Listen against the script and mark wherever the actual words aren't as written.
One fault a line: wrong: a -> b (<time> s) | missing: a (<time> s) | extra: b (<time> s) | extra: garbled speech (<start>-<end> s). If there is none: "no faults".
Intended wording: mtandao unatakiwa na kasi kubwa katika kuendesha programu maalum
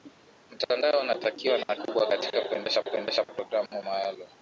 missing: kasi (1.8 s)
extra: kuendesha (2.8 s)